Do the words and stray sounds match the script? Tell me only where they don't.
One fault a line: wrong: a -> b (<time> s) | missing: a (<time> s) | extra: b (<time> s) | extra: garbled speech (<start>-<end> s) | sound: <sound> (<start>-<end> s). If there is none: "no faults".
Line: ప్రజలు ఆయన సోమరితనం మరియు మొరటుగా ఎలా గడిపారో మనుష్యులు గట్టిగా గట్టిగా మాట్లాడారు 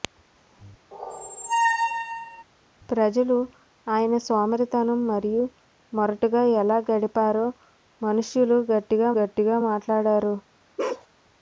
sound: squeak (0.9-2.4 s)
sound: bark (10.8-11.1 s)